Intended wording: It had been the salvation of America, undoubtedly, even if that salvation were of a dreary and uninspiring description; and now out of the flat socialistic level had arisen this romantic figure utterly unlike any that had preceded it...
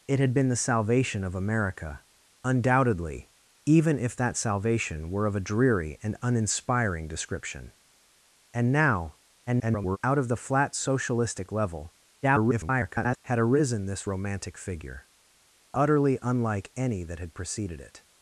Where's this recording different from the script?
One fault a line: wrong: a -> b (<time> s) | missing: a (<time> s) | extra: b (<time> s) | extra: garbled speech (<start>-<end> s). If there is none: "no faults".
extra: garbled speech (9.5-10.0 s)
extra: garbled speech (12.2-13.2 s)